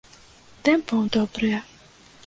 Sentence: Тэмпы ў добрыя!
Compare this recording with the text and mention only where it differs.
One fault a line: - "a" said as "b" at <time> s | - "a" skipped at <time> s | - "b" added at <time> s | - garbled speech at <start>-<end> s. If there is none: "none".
none